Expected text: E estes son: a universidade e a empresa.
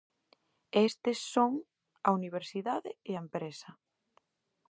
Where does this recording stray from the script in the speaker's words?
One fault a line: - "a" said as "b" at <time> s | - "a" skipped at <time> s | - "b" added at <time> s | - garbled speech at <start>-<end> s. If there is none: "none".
none